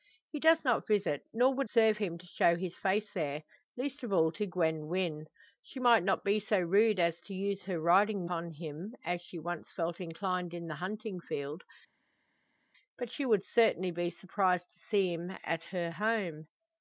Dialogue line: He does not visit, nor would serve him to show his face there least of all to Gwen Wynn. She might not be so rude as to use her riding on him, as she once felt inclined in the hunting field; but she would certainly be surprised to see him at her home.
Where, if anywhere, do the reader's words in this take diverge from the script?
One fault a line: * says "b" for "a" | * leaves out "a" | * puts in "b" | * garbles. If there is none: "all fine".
all fine